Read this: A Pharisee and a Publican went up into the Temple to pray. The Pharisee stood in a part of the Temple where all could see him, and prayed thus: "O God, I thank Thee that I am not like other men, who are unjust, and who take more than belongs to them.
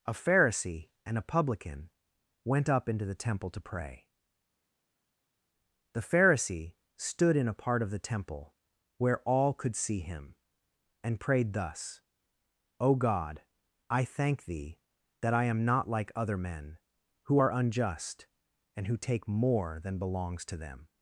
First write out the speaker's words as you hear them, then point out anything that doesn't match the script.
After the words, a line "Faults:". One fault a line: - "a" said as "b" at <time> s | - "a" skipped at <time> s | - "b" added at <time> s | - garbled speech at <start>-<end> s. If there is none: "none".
A Pharisee and a Publican went up into the Temple to pray. The Pharisee stood in a part of the Temple where all could see him, and prayed thus: "O God, I thank Thee that I am not like other men, who are unjust, and who take more than belongs to them.
Faults:
none